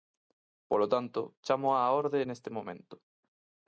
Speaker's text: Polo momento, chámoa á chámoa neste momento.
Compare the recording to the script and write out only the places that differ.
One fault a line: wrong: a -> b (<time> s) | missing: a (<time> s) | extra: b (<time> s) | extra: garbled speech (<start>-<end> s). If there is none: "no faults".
wrong: momento -> tanto (0.9 s)
wrong: chámoa -> orde (2.0 s)